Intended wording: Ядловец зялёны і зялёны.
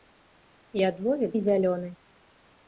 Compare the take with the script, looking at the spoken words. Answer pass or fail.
fail